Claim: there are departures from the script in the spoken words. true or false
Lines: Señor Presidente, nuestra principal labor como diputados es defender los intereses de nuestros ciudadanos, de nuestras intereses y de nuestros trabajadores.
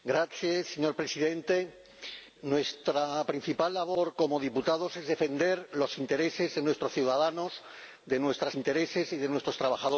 false